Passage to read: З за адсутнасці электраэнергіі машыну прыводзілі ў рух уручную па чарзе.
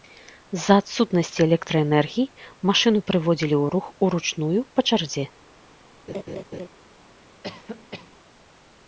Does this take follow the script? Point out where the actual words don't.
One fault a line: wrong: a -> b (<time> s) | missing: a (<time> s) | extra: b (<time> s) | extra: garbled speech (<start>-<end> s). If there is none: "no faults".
no faults